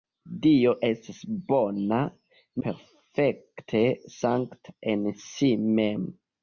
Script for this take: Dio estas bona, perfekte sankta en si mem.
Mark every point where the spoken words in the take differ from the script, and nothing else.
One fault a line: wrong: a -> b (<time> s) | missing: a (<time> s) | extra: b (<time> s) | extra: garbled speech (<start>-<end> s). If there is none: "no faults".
no faults